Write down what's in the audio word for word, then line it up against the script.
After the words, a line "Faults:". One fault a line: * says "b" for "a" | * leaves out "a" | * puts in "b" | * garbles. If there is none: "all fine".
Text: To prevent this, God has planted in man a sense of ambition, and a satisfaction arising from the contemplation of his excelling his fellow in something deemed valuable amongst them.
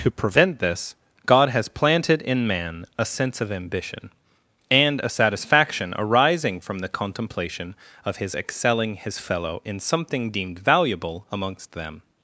To prevent this, God has planted in man a sense of ambition, and a satisfaction arising from the contemplation of his excelling his fellow in something deemed valuable amongst them.
Faults:
all fine